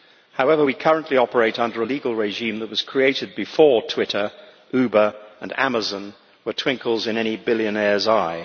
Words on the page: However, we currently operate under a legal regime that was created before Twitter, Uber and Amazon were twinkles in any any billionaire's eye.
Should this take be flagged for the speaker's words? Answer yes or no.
yes